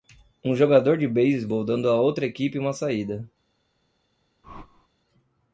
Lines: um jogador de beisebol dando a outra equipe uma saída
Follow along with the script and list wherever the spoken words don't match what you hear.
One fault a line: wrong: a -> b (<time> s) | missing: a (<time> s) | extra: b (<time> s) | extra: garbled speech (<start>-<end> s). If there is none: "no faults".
no faults